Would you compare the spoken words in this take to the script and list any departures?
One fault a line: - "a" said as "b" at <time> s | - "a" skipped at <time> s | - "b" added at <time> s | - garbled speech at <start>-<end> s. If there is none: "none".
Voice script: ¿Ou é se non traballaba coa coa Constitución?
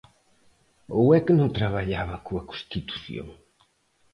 - "se" said as "que" at 1.2 s
- "coa" skipped at 2.5 s